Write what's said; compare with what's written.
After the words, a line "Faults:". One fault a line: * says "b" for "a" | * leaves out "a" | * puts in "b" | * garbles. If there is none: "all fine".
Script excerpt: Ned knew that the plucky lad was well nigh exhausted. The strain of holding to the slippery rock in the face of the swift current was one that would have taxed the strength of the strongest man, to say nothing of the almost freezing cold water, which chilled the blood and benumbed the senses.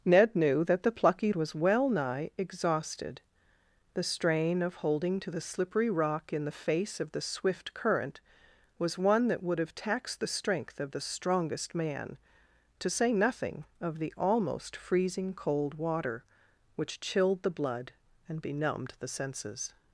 Ned knew that the plucky was well nigh exhausted. The strain of holding to the slippery rock in the face of the swift current was one that would have taxed the strength of the strongest man, to say nothing of the almost freezing cold water, which chilled the blood and benumbed the senses.
Faults:
* leaves out "lad"